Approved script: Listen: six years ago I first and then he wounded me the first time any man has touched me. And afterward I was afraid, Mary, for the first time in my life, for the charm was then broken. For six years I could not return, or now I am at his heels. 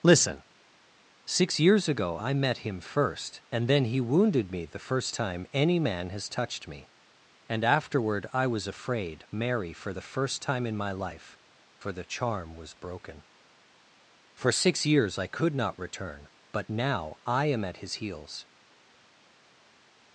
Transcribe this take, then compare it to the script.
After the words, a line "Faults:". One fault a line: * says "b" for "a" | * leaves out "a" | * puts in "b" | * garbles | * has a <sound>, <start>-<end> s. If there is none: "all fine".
Listen: six years ago I met him first and then he wounded me the first time any man has touched me. And afterward I was afraid, Mary, for the first time in my life, for the charm was broken. For six years I could not return, but now I am at his heels.
Faults:
* puts in "met him"
* leaves out "then"
* says "but" for "or"